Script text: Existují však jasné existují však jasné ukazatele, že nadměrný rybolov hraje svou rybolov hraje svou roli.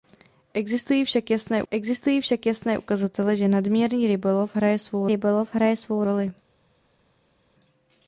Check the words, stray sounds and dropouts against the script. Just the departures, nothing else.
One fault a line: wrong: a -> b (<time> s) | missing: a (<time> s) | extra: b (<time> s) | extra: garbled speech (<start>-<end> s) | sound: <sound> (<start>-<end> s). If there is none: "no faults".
no faults